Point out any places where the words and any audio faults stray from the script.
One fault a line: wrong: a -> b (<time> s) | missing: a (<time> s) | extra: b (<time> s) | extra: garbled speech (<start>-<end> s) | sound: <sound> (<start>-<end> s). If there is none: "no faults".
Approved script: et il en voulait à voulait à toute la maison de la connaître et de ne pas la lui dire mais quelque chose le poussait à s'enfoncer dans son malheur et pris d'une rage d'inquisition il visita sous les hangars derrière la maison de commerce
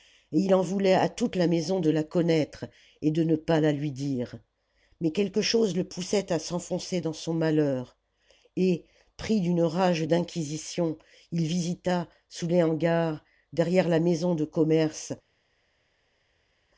missing: voulait à (1.1 s)